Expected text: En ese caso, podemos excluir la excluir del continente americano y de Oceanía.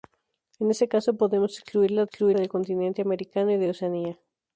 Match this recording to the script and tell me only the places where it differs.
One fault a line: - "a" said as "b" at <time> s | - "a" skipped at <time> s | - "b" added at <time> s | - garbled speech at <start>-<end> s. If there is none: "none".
none